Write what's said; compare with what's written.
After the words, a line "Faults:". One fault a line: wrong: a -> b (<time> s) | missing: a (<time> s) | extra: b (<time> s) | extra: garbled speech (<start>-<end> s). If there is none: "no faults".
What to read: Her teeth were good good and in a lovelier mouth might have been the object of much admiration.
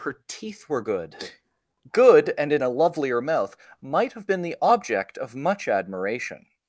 Her teeth were good good and in a lovelier mouth might have been the object of much admiration.
Faults:
no faults